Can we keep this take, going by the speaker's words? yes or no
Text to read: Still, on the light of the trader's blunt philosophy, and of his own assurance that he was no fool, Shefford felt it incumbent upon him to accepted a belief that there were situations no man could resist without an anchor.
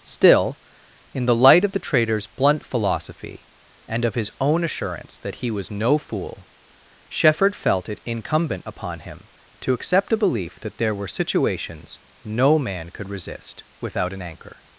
no